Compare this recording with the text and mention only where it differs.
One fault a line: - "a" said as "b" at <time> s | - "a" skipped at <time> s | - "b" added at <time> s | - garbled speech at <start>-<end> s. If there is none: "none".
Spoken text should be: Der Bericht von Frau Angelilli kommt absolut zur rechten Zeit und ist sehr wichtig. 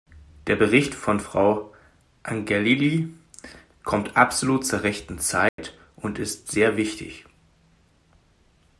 none